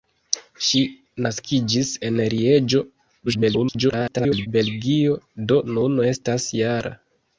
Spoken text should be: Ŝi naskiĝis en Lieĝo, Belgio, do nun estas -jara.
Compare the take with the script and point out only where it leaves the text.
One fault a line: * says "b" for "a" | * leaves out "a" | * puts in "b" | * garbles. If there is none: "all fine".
* garbles